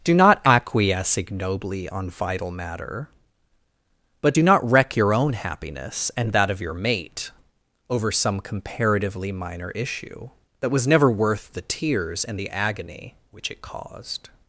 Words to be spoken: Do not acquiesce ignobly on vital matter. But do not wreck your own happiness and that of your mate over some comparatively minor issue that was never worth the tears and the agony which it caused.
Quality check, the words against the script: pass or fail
pass